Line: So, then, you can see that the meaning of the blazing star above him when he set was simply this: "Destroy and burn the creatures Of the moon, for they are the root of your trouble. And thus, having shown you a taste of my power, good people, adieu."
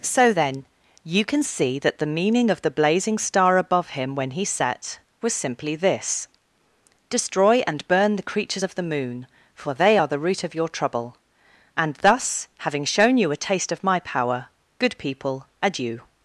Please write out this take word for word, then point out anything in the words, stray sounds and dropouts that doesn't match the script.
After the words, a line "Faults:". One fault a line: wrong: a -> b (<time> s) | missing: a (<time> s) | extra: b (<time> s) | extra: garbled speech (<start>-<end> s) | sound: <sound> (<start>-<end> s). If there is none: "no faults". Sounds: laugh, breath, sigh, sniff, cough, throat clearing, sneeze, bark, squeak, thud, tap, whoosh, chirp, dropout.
So, then, you can see that the meaning of the blazing star above him when he set was simply this: "Destroy and burn the creatures Of the moon, for they are the root of your trouble. And thus, having shown you a taste of my power, good people, adieu."
Faults:
no faults